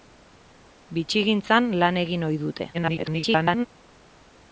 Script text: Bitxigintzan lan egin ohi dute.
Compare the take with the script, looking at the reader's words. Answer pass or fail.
fail